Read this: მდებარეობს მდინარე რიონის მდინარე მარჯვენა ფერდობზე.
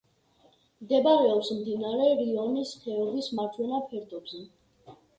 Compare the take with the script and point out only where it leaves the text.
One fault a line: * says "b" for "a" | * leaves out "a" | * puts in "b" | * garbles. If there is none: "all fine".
* says "ხეობის" for "მდინარე"